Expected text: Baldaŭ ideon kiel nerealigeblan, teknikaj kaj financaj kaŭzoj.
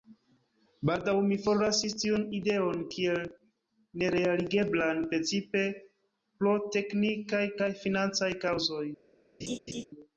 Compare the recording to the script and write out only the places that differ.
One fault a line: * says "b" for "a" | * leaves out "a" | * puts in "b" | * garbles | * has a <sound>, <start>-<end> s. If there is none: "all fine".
* puts in "mi forlasis tiun"
* puts in "precipe pro"
* has a laugh, 9.4-9.9 s